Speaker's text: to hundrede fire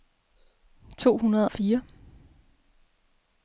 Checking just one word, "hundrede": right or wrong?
right